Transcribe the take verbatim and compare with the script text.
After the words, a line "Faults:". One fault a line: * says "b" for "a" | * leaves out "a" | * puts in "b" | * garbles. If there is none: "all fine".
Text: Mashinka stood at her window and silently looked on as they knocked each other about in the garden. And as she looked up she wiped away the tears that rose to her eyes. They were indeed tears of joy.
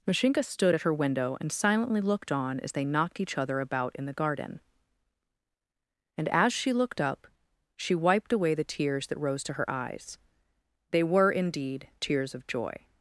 Mashinka stood at her window and silently looked on as they knocked each other about in the garden. And as she looked up she wiped away the tears that rose to her eyes. They were indeed tears of joy.
Faults:
all fine